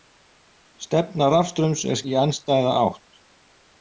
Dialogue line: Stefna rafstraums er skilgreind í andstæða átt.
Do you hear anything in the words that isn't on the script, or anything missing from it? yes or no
yes